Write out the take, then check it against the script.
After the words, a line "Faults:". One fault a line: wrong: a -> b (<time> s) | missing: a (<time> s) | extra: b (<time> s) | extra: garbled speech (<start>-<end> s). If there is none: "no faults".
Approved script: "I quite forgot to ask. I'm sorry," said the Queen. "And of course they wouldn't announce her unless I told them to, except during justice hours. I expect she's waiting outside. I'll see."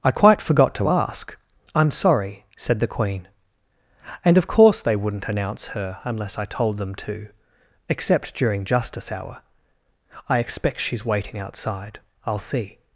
"I quite forgot to ask. I'm sorry," said the Queen. "And of course they wouldn't announce her unless I told them to, except during justice hour. I expect she's waiting outside. I'll see."
Faults:
wrong: hours -> hour (9.1 s)